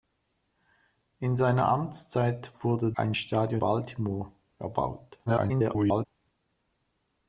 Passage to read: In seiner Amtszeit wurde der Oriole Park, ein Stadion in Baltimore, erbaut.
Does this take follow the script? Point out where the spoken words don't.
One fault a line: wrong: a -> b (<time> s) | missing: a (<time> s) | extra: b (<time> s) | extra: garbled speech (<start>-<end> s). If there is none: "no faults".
missing: der Oriole Park (2.9 s)
missing: in (3.6 s)
extra: garbled speech (5.3-6.1 s)